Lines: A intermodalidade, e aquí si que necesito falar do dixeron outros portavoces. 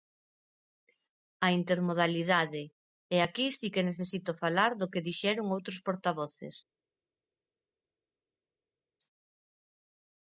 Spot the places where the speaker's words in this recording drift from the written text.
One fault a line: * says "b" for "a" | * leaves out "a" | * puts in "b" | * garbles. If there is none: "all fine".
* puts in "que"